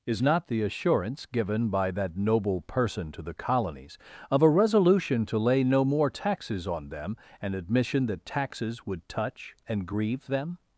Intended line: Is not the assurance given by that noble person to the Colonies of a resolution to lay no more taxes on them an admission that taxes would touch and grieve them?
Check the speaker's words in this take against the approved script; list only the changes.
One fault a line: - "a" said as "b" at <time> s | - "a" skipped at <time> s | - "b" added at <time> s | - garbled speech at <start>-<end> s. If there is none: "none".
none